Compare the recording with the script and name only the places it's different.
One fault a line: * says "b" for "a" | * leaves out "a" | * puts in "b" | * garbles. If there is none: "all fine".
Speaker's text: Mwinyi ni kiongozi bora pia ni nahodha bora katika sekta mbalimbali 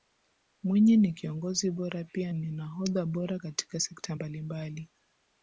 all fine